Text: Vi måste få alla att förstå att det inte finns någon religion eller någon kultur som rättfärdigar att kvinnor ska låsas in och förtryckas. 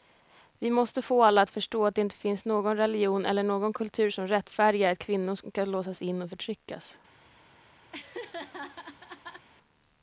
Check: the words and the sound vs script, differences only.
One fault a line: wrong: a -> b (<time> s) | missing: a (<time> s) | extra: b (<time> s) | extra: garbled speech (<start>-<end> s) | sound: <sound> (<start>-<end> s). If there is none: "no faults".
sound: laugh (7.9-9.5 s)